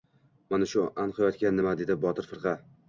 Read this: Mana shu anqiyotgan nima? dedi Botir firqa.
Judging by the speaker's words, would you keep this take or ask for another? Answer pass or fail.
pass